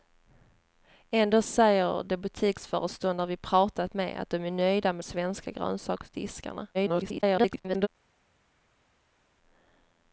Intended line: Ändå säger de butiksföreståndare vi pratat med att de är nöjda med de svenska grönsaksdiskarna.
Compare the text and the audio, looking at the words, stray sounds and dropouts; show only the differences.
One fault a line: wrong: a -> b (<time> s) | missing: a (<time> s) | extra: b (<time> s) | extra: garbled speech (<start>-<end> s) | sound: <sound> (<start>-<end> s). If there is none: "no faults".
missing: de (5.0 s)
extra: garbled speech (6.7-7.9 s)